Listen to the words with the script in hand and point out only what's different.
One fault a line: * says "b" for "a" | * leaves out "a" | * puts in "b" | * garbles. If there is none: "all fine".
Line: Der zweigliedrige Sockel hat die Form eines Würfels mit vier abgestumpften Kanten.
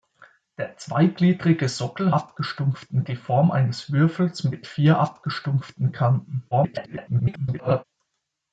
* says "abgestumpften" for "hat"
* garbles